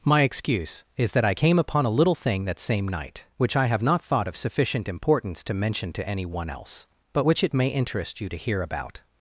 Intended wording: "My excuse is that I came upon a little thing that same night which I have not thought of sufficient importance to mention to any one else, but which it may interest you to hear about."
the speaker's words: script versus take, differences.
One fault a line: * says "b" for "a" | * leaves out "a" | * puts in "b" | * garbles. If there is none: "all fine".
all fine